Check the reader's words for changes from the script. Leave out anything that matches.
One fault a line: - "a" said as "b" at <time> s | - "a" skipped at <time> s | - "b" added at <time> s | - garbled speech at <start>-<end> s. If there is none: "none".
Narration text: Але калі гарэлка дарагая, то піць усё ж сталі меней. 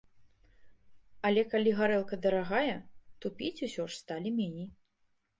none